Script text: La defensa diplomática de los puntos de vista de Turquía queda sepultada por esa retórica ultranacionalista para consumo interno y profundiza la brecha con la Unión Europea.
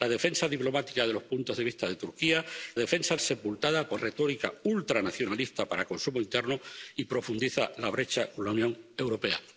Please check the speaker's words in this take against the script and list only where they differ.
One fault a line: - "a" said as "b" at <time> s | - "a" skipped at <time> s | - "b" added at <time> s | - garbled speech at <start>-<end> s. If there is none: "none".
- "queda" said as "defensa" at 2.8 s
- "esa" skipped at 4.0 s